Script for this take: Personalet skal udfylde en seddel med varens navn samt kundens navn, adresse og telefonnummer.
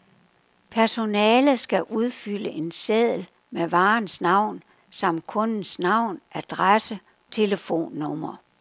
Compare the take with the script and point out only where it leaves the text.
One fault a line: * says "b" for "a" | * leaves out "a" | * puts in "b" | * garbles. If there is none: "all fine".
* leaves out "og"